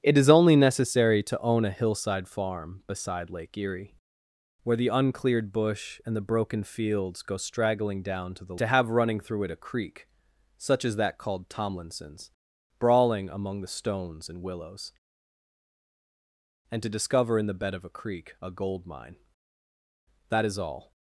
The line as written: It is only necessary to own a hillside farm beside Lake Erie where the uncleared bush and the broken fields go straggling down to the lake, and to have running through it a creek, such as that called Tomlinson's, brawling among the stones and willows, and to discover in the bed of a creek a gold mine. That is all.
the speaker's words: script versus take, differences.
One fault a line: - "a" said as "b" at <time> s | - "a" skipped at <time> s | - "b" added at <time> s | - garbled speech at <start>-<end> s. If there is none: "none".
- "lake and" skipped at 8.6 s